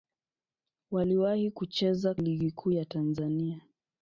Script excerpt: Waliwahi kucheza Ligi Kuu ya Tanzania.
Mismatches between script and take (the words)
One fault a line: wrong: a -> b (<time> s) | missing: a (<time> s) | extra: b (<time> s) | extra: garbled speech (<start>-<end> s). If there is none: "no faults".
no faults